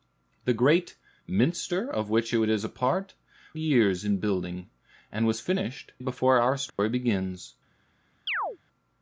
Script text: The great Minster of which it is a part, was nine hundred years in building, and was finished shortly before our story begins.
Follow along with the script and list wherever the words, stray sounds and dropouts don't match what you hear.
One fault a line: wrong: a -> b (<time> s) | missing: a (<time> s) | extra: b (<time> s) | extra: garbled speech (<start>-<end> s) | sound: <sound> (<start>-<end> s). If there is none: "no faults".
missing: was nine hundred (3.1 s)
missing: shortly (5.9 s)
sound: dropout (6.7-6.8 s)
sound: chirp (8.3-8.6 s)